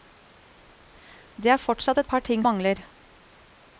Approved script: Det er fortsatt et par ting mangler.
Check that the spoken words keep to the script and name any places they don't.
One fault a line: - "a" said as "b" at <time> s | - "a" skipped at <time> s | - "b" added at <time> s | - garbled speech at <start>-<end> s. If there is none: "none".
none